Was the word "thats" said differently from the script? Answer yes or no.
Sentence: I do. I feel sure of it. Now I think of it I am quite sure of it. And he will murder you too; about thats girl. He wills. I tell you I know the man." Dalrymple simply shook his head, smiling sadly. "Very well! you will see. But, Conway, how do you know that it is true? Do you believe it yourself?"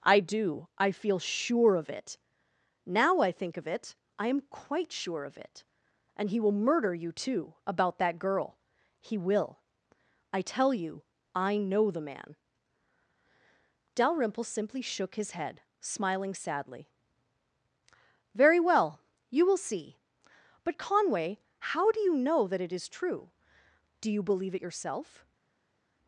yes